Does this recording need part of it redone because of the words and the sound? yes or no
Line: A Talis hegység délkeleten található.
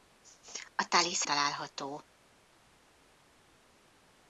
yes